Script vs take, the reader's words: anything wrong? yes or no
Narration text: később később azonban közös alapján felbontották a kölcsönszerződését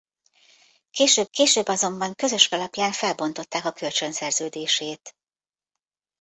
no